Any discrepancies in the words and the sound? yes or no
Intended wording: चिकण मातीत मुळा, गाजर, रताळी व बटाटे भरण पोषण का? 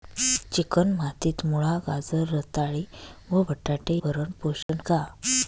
yes